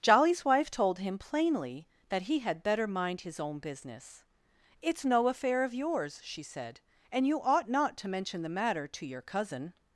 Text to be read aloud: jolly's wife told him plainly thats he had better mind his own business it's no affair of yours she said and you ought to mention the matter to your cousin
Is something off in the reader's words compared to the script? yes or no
yes